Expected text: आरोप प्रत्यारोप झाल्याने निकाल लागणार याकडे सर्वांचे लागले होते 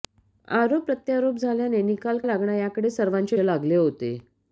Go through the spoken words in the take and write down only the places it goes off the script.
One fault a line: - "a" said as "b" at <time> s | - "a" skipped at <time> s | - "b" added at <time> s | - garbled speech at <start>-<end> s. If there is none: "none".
none